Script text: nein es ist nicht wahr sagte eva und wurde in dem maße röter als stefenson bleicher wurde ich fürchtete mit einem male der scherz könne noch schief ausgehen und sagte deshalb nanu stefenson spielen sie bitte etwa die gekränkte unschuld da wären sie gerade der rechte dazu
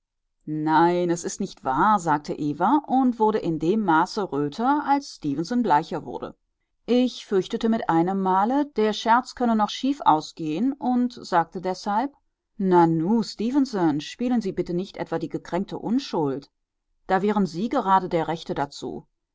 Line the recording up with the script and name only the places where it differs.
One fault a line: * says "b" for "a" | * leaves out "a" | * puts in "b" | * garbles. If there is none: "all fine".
* puts in "nicht"